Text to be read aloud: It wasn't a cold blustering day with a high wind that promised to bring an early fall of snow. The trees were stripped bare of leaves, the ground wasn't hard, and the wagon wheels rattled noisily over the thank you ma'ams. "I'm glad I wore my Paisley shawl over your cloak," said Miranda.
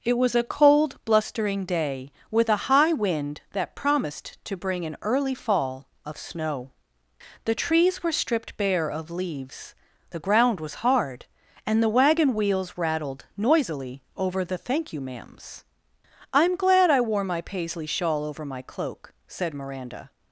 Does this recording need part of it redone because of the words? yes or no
yes